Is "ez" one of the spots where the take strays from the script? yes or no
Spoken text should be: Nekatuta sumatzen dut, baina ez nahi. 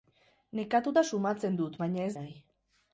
no